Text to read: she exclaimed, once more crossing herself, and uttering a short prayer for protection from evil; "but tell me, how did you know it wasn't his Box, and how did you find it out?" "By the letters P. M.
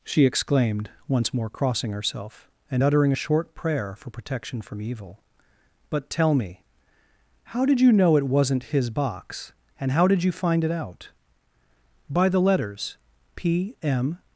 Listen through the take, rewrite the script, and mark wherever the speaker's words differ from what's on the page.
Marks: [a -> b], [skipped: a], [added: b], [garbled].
she exclaimed, once more crossing herself, and uttering a short prayer for protection from evil; "but tell me, how did you know it wasn't his Box, and how did you find it out?" "By the letters P. M.